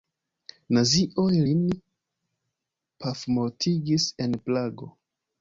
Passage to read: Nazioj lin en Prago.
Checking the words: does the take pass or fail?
fail